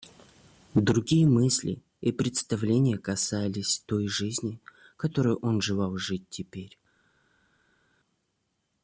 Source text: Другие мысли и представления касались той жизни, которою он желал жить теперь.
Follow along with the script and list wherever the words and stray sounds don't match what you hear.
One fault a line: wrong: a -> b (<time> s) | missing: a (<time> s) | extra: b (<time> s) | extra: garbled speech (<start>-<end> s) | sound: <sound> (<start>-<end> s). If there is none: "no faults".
no faults